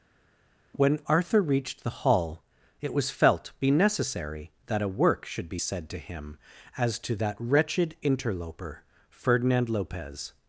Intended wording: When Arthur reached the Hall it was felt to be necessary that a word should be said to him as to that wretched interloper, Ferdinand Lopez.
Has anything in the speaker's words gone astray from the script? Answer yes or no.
yes